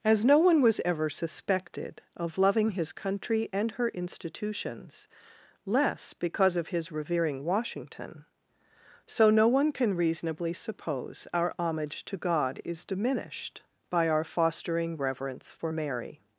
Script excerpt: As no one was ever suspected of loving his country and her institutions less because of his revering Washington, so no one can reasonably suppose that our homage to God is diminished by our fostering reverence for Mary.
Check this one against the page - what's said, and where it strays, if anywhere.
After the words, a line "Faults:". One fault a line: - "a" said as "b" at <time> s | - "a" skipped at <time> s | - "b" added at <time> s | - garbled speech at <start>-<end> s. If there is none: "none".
As no one was ever suspected of loving his country and her institutions less because of his revering Washington, so no one can reasonably suppose our homage to God is diminished by our fostering reverence for Mary.
Faults:
- "that" skipped at 11.3 s